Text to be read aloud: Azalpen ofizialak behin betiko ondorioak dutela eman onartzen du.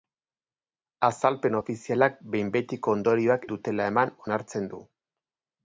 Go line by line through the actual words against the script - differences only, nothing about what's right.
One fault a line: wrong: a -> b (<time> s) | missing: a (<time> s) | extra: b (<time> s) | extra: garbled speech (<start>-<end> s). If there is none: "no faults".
no faults